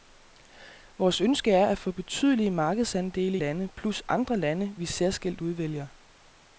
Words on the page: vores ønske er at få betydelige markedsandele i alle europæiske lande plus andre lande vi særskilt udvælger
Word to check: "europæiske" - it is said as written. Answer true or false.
false